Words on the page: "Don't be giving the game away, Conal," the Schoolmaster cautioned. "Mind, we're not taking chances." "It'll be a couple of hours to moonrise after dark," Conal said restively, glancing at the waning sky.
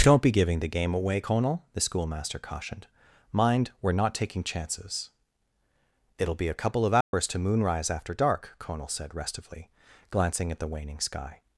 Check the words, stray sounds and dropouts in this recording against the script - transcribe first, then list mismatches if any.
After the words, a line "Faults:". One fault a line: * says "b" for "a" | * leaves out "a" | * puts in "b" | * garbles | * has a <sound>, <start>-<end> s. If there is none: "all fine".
"Don't be giving the game away, Conal," the Schoolmaster cautioned. "Mind, we're not taking chances." "It'll be a couple of hours to moonrise after dark," Conal said restively, glancing at the waning sky.
Faults:
* has a dropout, 7.0-7.1 s